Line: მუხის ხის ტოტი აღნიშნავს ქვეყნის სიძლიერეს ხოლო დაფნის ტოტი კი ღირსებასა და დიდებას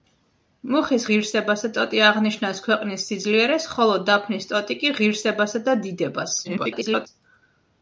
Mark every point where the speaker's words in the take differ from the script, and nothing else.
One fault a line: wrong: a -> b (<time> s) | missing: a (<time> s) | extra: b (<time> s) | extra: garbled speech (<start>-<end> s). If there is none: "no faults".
wrong: ხის -> ღირსებასა (1.1 s)
extra: garbled speech (6.4-7.1 s)